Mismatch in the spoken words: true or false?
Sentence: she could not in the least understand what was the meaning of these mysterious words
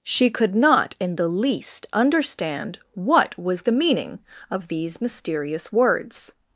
false